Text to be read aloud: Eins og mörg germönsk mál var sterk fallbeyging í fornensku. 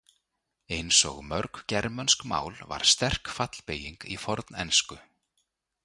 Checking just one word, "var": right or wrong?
right